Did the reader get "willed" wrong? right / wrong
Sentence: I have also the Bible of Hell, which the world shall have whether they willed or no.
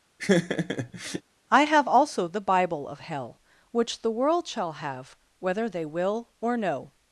wrong